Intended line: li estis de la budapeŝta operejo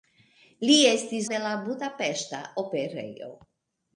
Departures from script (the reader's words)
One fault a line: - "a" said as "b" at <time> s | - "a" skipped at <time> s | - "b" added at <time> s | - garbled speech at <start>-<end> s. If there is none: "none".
none